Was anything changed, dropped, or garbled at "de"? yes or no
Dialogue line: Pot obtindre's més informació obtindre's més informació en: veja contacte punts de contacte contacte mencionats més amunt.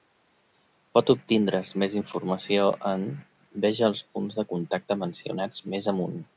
no